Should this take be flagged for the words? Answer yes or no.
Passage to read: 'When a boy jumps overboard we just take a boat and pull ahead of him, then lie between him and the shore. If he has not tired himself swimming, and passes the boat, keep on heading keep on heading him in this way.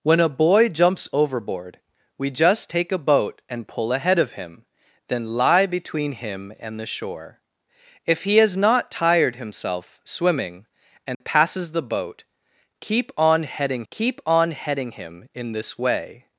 no